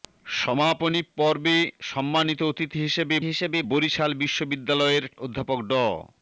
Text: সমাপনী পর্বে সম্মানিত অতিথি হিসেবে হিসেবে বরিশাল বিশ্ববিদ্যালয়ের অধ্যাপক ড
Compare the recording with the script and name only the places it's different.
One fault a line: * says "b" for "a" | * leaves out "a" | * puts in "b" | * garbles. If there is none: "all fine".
all fine